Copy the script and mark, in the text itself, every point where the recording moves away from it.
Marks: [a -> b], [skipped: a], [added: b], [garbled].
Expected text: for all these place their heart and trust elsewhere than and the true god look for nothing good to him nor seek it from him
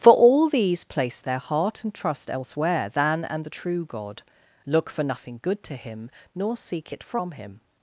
for all these place their heart and trust elsewhere than and the true god look for nothing good to him nor seek it from him